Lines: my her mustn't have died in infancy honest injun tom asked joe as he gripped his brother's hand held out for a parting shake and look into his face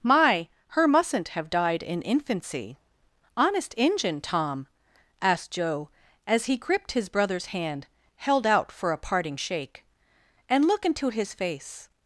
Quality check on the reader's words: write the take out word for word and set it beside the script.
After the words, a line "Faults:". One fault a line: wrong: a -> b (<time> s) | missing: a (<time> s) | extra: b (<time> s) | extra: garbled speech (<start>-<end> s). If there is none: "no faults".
my her mustn't have died in infancy honest injun tom asked joe as he gripped his brother's hand held out for a parting shake and look into his face
Faults:
no faults